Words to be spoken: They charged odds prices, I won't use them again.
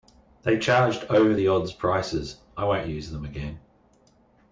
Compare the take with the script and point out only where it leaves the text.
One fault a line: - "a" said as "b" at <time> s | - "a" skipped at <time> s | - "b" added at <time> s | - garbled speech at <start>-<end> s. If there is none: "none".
- "over the" added at 1.1 s